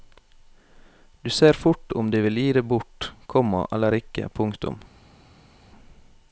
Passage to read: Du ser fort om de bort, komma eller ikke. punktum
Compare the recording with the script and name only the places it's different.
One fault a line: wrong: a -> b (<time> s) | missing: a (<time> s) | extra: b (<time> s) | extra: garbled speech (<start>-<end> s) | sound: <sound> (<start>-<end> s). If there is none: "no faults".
extra: vil gi det (2.2 s)